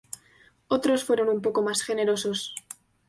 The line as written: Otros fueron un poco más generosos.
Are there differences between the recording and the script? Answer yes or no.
no